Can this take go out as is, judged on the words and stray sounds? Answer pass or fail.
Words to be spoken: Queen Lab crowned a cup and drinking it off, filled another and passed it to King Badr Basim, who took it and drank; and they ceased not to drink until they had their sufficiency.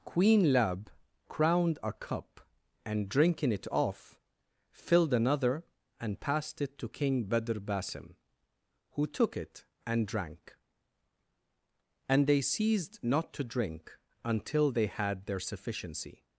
pass